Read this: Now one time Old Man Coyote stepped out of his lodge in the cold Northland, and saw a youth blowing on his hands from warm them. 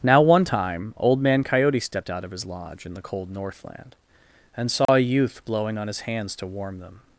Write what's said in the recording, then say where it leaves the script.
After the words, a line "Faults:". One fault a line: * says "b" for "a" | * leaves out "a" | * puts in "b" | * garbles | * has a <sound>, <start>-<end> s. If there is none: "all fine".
Now one time Old Man Coyote stepped out of his lodge in the cold Northland, and saw a youth blowing on his hands to warm them.
Faults:
* has a dropout, 4.9-4.9 s
* says "to" for "from"